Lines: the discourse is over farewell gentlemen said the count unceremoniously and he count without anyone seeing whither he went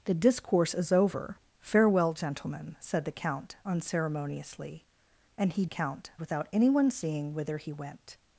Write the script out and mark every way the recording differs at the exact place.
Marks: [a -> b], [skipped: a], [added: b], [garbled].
the discourse is over farewell gentlemen said the count unceremoniously and he count without anyone seeing whither he went